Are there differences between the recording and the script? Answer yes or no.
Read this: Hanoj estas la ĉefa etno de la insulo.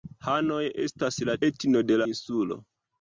yes